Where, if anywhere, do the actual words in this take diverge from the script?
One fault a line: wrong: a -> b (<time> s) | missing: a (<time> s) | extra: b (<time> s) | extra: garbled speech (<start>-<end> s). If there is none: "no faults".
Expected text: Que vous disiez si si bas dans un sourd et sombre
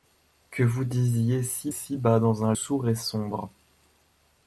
no faults